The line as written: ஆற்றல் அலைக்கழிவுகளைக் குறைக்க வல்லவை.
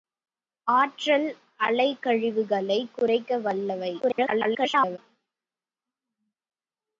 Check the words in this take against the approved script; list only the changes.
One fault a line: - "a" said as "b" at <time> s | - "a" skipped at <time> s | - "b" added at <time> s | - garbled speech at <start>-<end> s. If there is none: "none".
- garbled speech at 4.0-5.0 s